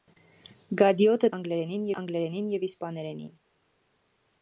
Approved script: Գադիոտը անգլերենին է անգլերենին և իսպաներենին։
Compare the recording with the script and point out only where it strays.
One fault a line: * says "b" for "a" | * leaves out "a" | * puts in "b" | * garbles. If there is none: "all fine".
all fine